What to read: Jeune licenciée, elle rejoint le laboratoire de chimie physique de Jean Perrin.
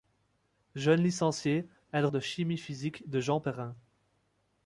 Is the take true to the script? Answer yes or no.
no